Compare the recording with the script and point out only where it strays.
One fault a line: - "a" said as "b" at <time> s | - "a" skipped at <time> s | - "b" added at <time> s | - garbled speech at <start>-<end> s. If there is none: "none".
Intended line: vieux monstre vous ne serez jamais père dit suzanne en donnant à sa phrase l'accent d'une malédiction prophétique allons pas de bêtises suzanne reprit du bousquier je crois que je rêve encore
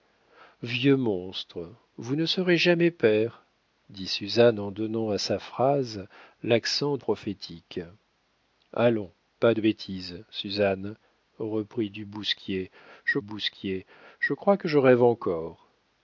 - "d'une malédiction" skipped at 7.0 s
- "bousquier je" added at 13.2 s